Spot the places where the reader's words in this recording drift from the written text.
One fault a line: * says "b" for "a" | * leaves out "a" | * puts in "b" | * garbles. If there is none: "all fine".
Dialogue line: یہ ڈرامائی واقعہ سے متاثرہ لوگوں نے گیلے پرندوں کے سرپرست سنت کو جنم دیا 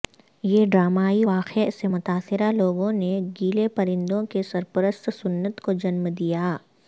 all fine